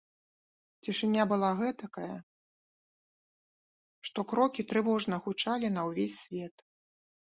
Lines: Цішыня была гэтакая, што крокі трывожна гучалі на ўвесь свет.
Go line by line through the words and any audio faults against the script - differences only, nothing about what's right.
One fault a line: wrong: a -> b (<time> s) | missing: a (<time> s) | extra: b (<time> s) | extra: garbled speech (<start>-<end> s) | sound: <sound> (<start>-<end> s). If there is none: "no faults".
no faults